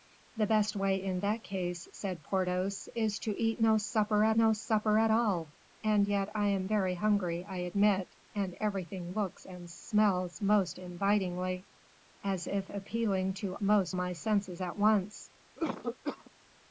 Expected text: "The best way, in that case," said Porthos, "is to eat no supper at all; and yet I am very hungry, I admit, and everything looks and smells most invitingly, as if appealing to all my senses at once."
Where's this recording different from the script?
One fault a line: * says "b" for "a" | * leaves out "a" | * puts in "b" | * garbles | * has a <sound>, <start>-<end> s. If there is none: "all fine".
* puts in "no supper at"
* says "most" for "all"
* has a cough, 15.6-16.3 s